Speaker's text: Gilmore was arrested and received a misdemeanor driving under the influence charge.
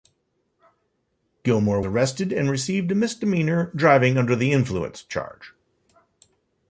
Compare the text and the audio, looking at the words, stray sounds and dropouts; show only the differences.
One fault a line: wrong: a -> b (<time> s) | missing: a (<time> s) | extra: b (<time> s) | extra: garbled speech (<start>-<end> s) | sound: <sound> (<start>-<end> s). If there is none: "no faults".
missing: was (1.8 s)